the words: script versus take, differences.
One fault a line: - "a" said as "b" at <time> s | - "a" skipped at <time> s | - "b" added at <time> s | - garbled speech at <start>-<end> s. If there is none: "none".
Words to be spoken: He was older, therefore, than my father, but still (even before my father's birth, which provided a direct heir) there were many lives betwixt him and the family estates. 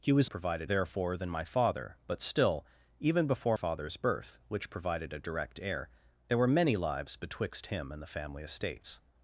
- "older" said as "provided" at 0.3 s
- "my" skipped at 3.6 s